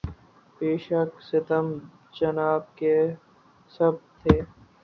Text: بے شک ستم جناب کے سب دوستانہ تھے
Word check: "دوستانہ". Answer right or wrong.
wrong